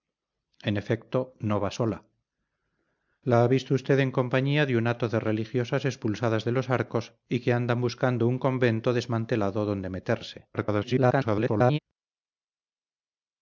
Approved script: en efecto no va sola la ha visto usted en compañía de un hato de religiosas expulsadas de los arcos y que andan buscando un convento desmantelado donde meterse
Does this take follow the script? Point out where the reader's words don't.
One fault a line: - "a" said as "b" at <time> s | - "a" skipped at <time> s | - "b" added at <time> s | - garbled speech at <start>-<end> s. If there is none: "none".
- garbled speech at 10.5-11.8 s